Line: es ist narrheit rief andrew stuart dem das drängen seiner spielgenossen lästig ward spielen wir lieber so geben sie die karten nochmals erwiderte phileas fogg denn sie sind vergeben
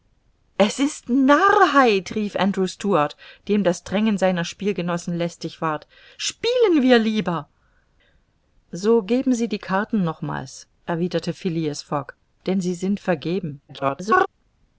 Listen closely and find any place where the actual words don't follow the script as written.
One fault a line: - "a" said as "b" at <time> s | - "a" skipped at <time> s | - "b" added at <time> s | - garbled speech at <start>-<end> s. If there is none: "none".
- garbled speech at 13.7-14.3 s